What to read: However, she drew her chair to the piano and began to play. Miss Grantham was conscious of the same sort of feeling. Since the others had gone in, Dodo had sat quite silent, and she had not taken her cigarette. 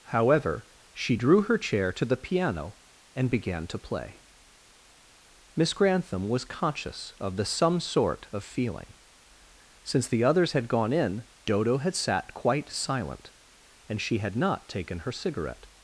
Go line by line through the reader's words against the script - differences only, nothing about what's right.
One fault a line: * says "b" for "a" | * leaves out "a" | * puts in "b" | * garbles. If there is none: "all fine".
* says "some" for "same"